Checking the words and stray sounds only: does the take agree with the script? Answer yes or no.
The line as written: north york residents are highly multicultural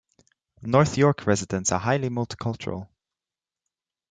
yes